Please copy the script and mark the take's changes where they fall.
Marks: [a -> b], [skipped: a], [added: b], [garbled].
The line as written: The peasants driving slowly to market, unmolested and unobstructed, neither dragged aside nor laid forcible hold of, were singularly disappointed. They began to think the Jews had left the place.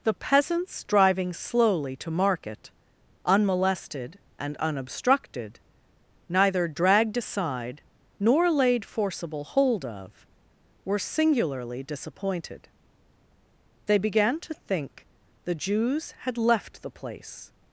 The peasants driving slowly to market, unmolested and unobstructed, neither dragged aside nor laid forcible hold of, were singularly disappointed. They began to think the Jews had left the place.